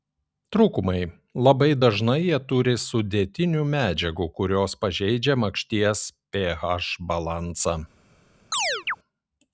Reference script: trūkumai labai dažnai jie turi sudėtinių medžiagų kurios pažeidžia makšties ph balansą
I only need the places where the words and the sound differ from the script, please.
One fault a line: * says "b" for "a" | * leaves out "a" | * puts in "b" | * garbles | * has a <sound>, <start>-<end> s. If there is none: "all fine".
* has a chirp, 8.5-9.0 s